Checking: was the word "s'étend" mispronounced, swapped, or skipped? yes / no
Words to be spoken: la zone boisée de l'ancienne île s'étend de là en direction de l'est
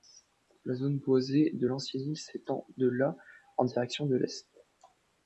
no